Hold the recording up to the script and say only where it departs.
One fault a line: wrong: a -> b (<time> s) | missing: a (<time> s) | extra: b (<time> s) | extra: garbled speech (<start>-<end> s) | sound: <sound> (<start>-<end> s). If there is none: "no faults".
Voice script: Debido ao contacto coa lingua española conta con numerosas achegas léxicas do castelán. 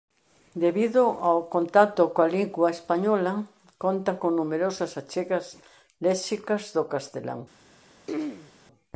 sound: throat clearing (8.1-8.5 s)